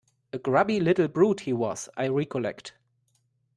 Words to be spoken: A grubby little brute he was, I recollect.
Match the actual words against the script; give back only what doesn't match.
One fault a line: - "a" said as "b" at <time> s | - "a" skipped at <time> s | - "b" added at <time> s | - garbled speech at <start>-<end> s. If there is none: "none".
none